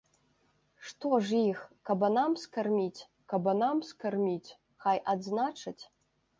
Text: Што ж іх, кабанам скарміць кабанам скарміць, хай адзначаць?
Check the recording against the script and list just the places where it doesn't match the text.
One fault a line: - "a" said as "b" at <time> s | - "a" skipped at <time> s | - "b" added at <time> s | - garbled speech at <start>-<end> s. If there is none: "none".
none